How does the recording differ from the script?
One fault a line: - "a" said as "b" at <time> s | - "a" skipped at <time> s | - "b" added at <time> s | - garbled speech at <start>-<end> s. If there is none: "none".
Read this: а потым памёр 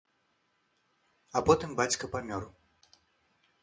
- "бацька" added at 1.8 s